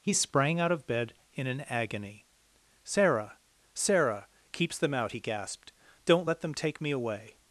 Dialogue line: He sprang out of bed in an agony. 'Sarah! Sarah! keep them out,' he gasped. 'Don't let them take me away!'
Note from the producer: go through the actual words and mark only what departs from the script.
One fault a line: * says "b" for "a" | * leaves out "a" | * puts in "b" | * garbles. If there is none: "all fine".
* says "keeps" for "keep"